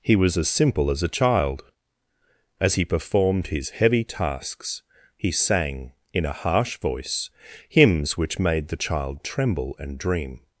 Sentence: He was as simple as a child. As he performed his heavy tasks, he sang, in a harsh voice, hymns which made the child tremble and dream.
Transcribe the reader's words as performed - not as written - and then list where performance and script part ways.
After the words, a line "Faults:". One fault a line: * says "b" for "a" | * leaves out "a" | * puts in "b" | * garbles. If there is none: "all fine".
He was as simple as a child. As he performed his heavy tasks, he sang, in a harsh voice, hymns which made the child tremble and dream.
Faults:
all fine